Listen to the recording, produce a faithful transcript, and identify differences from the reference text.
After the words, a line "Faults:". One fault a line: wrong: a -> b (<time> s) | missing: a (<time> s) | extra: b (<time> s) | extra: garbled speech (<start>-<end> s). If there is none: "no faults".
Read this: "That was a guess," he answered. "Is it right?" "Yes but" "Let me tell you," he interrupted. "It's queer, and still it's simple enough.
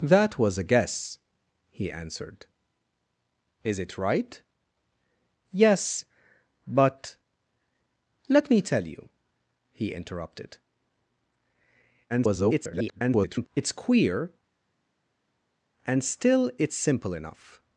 "That was a guess," he answered. "Is it right?" "Yes but" "Let me tell you," he interrupted. [garbled] "It's queer, and still it's simple enough.
Faults:
extra: garbled speech (12.1-13.5 s)